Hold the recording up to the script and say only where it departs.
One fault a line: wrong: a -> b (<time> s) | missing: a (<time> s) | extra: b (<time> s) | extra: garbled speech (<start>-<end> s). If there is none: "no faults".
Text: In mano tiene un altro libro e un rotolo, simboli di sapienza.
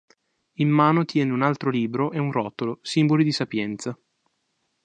no faults